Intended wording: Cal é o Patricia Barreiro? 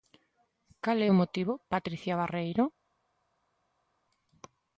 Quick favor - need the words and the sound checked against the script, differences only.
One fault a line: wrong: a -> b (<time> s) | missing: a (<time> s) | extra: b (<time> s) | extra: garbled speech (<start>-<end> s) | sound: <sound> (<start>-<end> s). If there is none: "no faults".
extra: motivo (1.2 s)